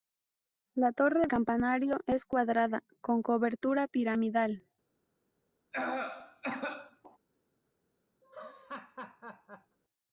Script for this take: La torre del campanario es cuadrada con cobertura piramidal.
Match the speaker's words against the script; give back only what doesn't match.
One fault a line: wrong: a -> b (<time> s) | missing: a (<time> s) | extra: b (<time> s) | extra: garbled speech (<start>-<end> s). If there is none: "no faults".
missing: del (1.3 s)